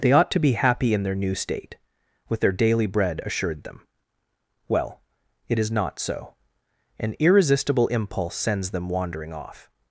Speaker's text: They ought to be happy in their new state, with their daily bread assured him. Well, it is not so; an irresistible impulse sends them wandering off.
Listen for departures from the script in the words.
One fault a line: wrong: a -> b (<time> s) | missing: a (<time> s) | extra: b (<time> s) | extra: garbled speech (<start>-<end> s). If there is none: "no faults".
wrong: him -> them (3.6 s)